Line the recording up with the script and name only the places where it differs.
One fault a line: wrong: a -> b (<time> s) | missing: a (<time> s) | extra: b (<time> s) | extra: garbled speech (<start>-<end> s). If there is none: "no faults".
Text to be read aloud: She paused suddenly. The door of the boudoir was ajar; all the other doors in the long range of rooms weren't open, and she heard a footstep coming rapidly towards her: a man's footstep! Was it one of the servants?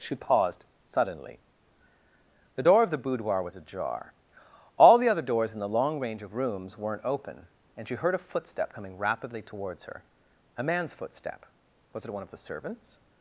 no faults